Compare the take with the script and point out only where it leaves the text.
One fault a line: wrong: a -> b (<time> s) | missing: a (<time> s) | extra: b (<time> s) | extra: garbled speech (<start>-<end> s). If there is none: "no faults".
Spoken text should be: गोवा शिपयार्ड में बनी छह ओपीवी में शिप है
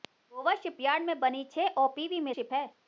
no faults